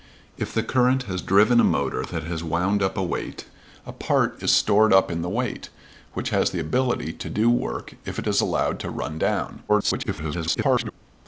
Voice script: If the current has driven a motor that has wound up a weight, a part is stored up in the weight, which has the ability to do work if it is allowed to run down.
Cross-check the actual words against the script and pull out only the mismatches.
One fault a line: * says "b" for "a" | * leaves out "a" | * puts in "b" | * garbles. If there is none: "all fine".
* garbles